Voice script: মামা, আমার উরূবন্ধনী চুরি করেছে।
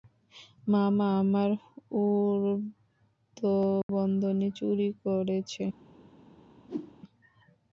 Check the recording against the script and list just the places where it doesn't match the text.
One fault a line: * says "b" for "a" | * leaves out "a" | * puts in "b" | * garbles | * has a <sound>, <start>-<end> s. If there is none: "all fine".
* has a dropout, 3.8-3.9 s
* has a whoosh, 6.7-6.9 s